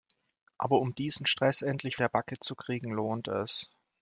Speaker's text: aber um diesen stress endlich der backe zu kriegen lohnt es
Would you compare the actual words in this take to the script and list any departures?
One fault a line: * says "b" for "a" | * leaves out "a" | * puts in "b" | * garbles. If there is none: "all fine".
all fine